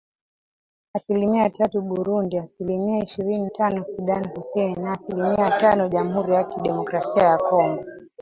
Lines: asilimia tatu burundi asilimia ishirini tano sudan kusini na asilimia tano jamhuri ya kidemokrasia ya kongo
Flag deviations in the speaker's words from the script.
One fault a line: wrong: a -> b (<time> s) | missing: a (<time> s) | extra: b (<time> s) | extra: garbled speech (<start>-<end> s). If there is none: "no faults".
no faults